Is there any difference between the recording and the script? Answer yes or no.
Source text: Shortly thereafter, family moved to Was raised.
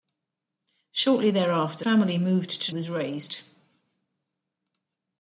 no